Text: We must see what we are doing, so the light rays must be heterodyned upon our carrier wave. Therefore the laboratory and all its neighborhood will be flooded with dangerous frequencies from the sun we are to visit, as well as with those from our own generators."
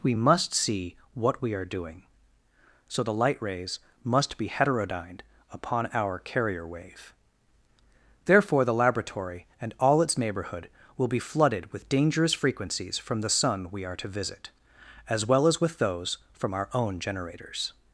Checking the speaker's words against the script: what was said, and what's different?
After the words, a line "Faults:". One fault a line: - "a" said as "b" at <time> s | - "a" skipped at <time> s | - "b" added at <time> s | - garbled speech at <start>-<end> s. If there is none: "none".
We must see what we are doing, so the light rays must be heterodyned upon our carrier wave. Therefore the laboratory and all its neighborhood will be flooded with dangerous frequencies from the sun we are to visit, as well as with those from our own generators."
Faults:
none